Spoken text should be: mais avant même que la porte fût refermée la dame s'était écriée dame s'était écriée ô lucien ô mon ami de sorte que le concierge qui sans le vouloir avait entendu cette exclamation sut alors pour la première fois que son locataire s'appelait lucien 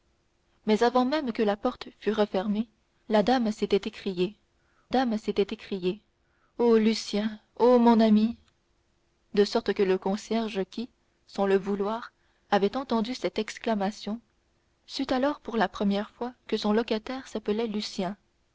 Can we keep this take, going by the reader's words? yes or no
yes